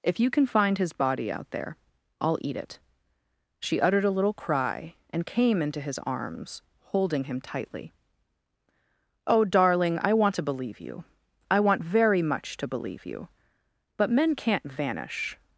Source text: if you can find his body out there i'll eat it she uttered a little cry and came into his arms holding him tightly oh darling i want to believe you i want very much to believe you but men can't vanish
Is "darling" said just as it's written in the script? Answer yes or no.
yes